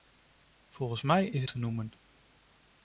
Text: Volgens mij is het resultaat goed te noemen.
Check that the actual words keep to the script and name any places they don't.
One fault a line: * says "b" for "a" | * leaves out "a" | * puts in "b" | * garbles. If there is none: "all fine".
* leaves out "het resultaat goed"